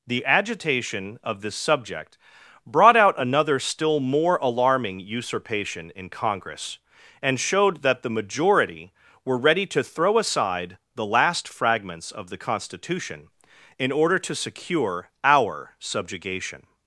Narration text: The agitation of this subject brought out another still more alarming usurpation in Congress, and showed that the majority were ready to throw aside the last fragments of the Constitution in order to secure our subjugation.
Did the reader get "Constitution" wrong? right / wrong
right